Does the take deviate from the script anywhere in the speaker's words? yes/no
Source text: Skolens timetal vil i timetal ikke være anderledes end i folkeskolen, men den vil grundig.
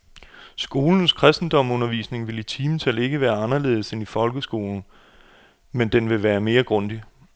yes